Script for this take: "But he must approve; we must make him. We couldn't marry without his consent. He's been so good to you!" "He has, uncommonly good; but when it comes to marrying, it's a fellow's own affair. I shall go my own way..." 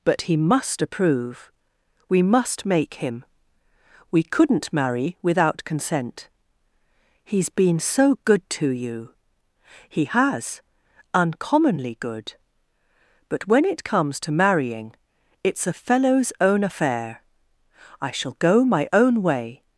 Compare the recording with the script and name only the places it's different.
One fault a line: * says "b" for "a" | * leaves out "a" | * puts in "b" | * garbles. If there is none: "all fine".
* leaves out "his"